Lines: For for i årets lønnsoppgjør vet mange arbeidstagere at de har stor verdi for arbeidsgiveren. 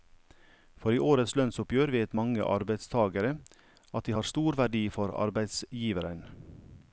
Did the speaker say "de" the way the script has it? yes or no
yes